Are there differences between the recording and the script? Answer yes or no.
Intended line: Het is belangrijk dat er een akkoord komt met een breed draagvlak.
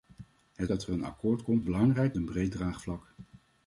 yes